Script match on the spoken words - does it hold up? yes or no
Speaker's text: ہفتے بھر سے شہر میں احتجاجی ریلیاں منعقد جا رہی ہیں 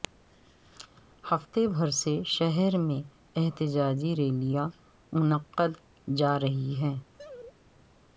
yes